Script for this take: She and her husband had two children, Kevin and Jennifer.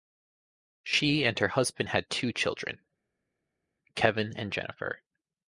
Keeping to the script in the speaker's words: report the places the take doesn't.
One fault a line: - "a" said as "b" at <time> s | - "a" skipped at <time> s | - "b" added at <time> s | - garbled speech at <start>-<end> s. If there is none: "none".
none